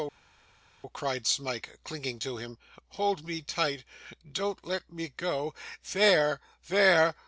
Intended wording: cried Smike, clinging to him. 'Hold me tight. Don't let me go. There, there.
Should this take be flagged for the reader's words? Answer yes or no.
no